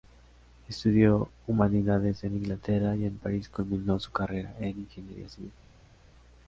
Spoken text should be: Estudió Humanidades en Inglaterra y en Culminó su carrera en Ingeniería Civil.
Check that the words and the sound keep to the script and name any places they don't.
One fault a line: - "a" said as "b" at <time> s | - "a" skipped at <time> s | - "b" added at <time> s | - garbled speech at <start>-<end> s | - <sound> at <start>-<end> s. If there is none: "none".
- "París" added at 3.2 s